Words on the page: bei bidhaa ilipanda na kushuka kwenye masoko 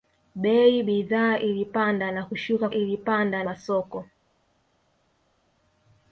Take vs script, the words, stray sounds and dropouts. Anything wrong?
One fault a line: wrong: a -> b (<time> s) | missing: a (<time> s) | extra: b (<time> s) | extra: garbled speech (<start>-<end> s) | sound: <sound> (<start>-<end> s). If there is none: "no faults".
wrong: kwenye -> ilipanda (2.7 s)